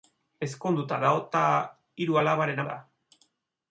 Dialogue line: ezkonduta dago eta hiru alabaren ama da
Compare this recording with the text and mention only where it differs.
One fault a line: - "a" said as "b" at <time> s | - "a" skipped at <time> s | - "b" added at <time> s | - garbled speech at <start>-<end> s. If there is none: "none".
- "ama" skipped at 2.6 s